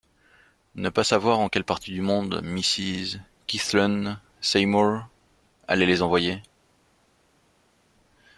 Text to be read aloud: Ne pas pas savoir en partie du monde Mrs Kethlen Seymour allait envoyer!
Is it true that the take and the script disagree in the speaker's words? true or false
true